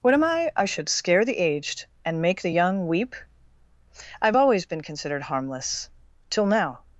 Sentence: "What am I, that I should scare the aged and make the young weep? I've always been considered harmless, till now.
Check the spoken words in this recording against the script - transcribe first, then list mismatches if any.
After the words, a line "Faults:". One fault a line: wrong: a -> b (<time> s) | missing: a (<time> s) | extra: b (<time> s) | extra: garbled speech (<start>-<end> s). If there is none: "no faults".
"What am I, I should scare the aged and make the young weep? I've always been considered harmless, till now.
Faults:
missing: that (0.5 s)